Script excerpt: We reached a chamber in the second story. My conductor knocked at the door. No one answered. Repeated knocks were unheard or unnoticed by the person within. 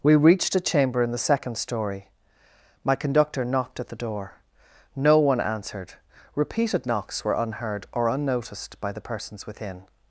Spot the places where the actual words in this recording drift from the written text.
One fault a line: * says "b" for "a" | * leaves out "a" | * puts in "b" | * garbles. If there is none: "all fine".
* says "persons" for "person"